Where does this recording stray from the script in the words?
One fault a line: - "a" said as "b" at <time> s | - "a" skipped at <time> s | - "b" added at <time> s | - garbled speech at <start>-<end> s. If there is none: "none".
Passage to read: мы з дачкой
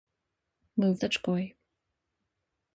none